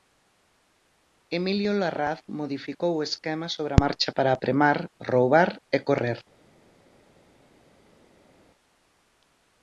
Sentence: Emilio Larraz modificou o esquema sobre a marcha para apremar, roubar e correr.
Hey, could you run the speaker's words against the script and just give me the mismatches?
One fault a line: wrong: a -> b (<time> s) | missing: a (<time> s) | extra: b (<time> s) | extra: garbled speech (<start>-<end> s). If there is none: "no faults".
no faults